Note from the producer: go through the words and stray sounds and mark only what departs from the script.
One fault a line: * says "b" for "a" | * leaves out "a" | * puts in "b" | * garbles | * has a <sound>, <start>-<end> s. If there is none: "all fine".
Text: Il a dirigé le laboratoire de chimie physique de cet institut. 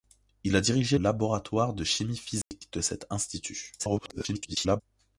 * leaves out "le"
* has a dropout, 2.4-2.5 s
* garbles